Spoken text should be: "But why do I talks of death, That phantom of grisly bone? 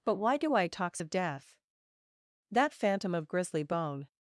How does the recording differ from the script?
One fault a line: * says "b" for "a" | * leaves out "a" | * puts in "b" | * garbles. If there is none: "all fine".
all fine